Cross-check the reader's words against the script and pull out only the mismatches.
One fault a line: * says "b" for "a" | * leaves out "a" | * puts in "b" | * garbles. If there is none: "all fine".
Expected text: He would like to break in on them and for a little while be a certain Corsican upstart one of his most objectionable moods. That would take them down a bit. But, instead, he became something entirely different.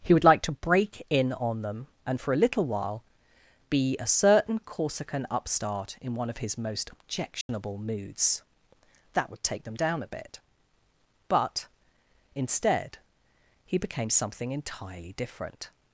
* puts in "in"